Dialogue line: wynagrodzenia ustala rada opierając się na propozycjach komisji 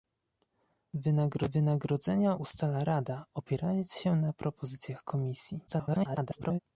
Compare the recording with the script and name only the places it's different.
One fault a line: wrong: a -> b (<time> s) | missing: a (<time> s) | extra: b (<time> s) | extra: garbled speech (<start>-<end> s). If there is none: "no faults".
extra: garbled speech (5.7-6.6 s)